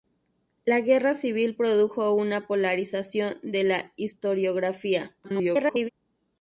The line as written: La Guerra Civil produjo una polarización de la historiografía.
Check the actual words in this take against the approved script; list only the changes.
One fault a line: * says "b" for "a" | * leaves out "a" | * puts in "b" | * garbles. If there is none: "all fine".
* garbles